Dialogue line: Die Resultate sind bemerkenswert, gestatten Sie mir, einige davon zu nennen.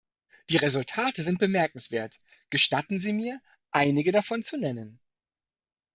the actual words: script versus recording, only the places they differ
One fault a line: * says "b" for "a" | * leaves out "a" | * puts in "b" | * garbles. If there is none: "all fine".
all fine